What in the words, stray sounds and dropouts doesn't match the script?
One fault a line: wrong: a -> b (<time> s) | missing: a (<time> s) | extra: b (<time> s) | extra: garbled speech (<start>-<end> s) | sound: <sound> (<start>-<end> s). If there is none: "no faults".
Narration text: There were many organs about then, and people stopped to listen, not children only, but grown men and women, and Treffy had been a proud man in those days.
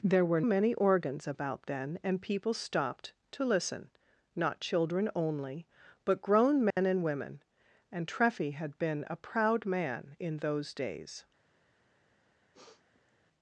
sound: dropout (6.7-6.8 s)
sound: sniff (12.5-13.1 s)